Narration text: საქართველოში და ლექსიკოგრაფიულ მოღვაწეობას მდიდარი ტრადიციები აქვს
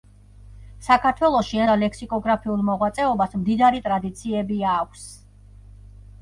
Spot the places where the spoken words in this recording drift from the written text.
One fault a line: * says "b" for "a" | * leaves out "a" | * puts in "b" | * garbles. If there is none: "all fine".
all fine